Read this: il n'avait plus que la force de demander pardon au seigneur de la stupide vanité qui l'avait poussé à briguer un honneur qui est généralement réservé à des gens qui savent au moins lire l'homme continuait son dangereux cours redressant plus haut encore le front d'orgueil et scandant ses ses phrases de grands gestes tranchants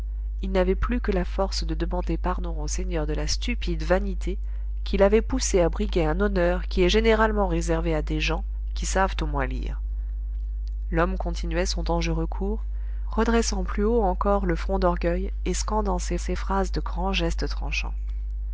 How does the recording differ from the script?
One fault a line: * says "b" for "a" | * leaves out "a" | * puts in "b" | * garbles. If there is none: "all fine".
all fine